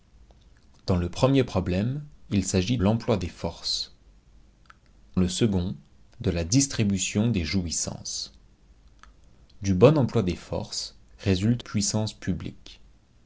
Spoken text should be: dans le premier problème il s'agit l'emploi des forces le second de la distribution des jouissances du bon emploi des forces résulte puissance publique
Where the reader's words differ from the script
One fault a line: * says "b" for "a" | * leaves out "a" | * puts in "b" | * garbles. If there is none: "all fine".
all fine